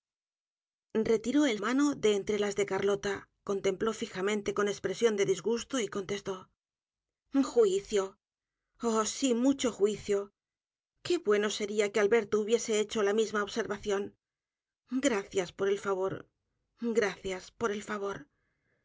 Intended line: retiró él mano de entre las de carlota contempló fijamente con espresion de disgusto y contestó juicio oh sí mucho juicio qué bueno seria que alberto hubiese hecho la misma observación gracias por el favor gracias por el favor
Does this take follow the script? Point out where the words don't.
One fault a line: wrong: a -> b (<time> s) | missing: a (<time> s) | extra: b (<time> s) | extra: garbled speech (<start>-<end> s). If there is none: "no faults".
no faults